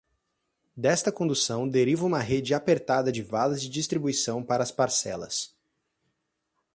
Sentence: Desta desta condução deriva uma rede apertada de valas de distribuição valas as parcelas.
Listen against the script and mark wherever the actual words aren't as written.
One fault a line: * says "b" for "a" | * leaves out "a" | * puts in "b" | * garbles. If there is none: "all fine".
* leaves out "desta"
* says "para" for "valas"